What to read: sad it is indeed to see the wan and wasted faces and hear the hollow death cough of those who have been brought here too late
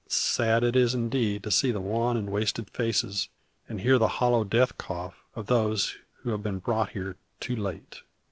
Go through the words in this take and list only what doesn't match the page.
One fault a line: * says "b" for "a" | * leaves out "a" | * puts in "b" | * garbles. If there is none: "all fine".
all fine